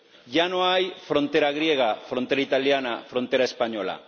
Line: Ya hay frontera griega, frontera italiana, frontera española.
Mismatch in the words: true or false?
true